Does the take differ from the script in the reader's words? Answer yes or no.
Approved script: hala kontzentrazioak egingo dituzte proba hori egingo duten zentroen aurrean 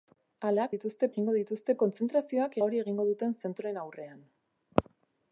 yes